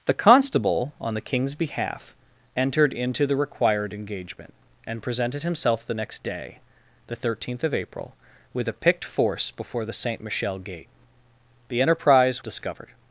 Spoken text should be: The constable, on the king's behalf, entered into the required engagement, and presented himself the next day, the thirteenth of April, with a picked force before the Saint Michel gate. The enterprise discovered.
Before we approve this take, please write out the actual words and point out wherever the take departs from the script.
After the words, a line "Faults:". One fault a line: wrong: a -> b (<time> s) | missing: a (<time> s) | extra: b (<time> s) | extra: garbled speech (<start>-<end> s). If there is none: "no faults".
The constable, on the king's behalf, entered into the required engagement, and presented himself the next day, the thirteenth of April, with a picked force before the Saint Michel gate. The enterprise discovered.
Faults:
no faults